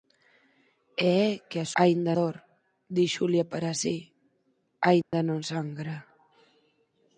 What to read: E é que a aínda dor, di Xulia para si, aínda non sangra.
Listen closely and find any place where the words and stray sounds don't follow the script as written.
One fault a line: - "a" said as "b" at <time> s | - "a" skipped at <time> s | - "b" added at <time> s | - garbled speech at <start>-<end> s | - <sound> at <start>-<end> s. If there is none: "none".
- dropout at 5.0-5.1 s